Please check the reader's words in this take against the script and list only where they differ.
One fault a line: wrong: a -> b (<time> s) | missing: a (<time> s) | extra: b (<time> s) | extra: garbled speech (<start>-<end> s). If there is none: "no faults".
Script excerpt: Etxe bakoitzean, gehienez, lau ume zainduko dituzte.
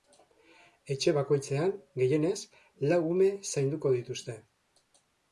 no faults